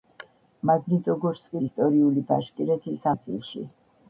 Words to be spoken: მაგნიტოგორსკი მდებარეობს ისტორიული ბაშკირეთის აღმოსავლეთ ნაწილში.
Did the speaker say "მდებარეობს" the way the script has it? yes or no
no